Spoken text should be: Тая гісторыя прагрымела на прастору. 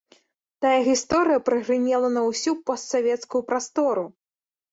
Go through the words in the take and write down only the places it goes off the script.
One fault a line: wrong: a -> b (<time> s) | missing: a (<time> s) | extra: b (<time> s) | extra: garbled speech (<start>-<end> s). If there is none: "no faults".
extra: ўсю постсавецкую (2.3 s)